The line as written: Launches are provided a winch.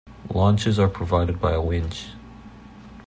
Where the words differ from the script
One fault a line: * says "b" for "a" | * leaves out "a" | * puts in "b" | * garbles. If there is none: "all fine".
* puts in "by"